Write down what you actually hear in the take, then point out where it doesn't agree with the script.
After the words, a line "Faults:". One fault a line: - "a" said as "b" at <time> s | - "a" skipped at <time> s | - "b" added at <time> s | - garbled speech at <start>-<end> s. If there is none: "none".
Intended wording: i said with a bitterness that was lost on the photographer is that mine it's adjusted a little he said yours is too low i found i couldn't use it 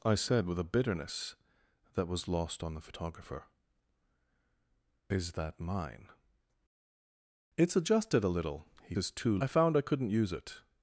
i said with a bitterness that was lost on the photographer is that mine it's adjusted a little he is too i found i couldn't use it
Faults:
- "said yours" skipped at 8.9 s
- "low" skipped at 9.4 s